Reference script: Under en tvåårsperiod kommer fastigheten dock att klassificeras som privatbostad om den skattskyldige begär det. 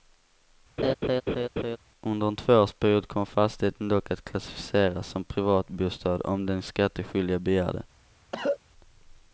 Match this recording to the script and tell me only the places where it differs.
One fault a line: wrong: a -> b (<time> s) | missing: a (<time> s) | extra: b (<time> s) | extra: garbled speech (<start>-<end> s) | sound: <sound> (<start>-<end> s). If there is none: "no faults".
sound: laugh (0.8-1.8 s)
sound: cough (8.3-8.6 s)